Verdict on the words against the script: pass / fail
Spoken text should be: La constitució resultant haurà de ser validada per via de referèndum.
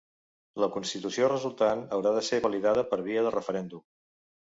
pass